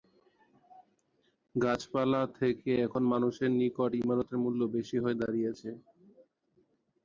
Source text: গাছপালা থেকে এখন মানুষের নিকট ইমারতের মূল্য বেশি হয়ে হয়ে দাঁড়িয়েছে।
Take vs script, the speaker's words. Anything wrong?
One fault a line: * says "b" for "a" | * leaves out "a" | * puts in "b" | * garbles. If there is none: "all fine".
* leaves out "হয়ে"